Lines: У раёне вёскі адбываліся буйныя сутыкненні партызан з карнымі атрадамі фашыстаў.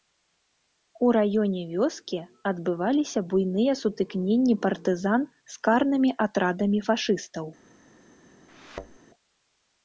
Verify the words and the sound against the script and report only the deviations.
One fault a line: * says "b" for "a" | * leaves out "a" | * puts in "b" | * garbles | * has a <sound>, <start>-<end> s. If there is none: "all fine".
* has a thud, 8.5-9.0 s